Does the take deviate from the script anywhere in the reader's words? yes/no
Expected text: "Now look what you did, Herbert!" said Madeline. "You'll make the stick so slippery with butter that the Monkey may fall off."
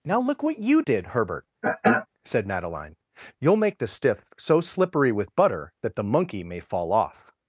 yes